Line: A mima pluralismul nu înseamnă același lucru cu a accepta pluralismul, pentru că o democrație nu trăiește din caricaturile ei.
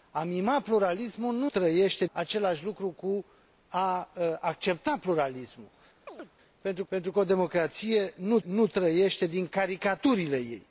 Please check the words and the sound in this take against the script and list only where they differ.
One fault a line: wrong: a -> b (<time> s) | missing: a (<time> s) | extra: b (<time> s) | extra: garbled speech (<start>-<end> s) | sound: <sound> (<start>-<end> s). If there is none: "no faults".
wrong: înseamnă -> trăiește (1.4 s)
sound: chirp (6.1-6.3 s)
extra: pentru (6.9 s)
extra: nu (8.4 s)